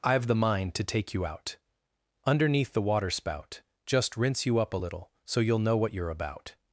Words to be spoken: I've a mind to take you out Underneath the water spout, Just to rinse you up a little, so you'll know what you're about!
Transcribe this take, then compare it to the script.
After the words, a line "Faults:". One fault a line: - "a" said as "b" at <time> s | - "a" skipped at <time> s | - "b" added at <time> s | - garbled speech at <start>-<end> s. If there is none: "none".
I've the mind to take you out Underneath the water spout, Just rinse you up a little, so you'll know what you're about!
Faults:
- "a" said as "the" at 0.2 s
- "to" skipped at 4.1 s